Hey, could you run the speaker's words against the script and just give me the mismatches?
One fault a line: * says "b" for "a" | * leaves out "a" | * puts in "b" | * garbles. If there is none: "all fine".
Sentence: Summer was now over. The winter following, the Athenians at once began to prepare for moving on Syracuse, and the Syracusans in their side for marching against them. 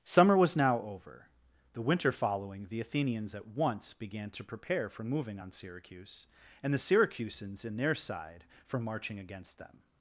all fine